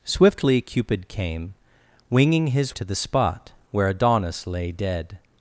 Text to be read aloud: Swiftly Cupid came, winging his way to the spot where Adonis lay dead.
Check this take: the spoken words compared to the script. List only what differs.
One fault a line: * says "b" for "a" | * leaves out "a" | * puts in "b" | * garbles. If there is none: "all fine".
* leaves out "way"